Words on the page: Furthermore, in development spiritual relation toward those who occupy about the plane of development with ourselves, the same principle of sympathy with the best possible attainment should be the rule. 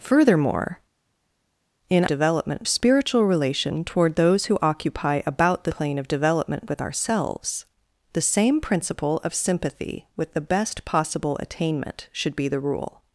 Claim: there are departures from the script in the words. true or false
false